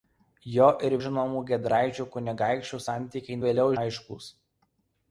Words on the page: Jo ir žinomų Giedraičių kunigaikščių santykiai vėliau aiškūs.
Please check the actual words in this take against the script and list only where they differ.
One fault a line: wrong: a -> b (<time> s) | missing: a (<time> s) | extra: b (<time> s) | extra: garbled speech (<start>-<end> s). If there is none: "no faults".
no faults